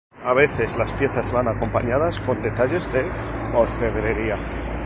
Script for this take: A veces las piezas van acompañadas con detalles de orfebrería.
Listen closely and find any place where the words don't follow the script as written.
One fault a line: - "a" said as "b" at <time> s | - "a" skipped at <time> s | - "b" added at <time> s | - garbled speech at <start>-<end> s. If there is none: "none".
none